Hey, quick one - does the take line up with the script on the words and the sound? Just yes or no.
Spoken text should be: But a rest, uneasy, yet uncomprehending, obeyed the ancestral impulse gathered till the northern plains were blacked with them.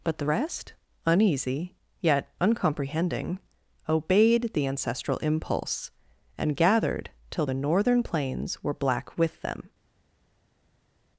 no